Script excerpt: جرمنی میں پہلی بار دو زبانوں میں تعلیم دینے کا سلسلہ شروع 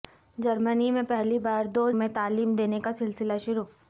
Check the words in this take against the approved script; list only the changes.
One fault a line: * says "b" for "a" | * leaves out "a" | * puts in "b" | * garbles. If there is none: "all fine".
* leaves out "زبانوں"